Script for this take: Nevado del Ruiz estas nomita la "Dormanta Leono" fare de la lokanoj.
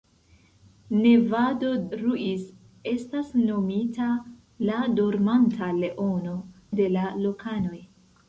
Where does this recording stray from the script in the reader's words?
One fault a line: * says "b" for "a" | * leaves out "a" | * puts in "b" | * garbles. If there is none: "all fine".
* leaves out "del"
* leaves out "fare"